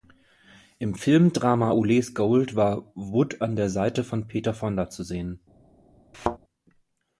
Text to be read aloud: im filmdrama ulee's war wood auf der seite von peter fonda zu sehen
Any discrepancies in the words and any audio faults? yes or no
yes